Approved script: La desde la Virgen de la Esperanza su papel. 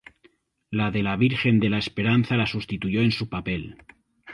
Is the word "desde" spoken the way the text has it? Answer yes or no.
no